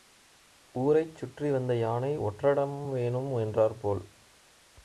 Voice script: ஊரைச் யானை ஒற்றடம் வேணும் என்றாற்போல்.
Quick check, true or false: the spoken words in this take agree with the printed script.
false